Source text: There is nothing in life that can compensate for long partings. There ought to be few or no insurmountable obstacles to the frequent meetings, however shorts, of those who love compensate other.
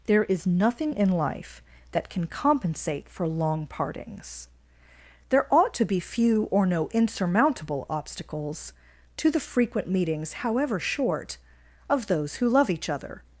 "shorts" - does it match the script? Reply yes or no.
no